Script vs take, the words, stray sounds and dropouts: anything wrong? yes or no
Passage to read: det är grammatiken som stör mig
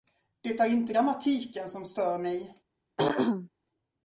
yes